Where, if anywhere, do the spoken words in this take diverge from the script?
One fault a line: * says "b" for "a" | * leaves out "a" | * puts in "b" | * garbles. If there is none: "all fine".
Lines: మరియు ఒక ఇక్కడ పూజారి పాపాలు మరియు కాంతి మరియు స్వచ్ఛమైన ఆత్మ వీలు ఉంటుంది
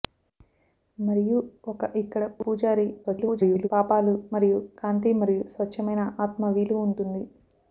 * garbles